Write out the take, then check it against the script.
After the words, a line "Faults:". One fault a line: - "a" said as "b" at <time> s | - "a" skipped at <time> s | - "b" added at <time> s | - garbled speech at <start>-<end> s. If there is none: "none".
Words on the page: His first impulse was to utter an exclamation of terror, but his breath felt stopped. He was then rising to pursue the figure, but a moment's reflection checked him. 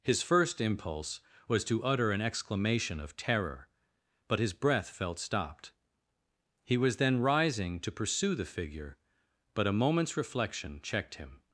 His first impulse was to utter an exclamation of terror, but his breath felt stopped. He was then rising to pursue the figure, but a moment's reflection checked him.
Faults:
none